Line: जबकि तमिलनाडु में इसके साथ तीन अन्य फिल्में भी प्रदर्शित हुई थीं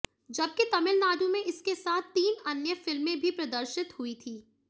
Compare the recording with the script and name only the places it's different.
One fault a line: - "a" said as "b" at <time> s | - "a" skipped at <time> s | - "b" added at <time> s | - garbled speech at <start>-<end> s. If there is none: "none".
none